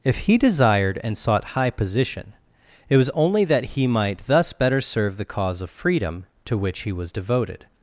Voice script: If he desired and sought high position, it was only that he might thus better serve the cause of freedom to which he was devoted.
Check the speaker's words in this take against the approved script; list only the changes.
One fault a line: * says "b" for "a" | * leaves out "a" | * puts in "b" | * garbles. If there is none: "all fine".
all fine